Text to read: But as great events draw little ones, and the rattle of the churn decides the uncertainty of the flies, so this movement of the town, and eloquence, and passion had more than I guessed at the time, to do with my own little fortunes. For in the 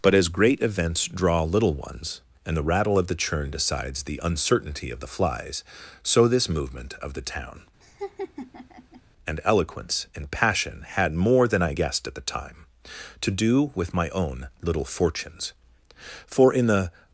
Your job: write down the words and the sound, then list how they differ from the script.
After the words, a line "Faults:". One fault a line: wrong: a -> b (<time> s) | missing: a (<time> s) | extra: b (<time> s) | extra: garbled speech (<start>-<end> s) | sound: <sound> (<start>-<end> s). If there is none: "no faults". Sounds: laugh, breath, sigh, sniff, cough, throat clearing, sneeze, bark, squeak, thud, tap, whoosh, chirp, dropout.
But as great events draw little ones, and the rattle of the churn decides the uncertainty of the flies, so this movement of the town, and eloquence, and passion had more than I guessed at the time, to do with my own little fortunes. For in the
Faults:
sound: laugh (7.8-9.0 s)